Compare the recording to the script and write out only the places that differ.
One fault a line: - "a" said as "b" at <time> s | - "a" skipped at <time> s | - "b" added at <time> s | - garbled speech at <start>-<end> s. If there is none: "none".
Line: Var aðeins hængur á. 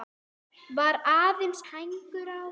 none